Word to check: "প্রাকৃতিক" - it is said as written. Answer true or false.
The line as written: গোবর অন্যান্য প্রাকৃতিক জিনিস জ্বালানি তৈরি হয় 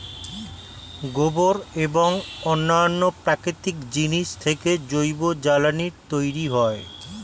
true